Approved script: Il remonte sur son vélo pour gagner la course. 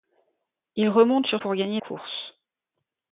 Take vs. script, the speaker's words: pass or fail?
fail